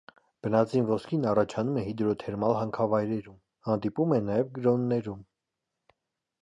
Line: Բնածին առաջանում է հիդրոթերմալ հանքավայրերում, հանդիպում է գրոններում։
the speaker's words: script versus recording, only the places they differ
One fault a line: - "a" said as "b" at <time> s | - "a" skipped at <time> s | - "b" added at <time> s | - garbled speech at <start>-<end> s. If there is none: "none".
- "ոսկին" added at 0.9 s
- "նաև" added at 4.3 s